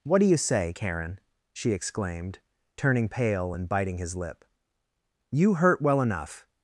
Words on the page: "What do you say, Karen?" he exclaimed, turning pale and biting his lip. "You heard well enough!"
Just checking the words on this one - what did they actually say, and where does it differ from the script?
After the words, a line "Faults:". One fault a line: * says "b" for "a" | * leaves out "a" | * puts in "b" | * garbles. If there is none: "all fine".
"What do you say, Karen?" she exclaimed, turning pale and biting his lip. "You hurt well enough!"
Faults:
* says "she" for "he"
* says "hurt" for "heard"